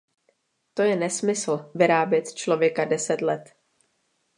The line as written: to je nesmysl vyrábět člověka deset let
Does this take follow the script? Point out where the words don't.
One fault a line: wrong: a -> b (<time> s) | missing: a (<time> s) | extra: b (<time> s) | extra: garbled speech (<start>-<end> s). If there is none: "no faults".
no faults